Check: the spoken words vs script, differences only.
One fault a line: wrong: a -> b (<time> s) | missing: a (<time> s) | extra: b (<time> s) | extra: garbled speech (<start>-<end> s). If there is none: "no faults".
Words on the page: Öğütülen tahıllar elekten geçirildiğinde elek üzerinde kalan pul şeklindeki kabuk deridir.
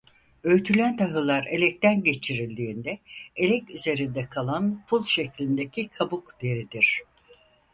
no faults